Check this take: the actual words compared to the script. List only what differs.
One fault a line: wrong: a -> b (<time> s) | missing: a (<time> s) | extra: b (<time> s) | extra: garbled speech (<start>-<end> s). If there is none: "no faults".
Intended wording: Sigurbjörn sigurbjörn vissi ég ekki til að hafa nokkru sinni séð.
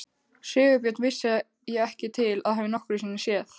missing: sigurbjörn (1.0 s)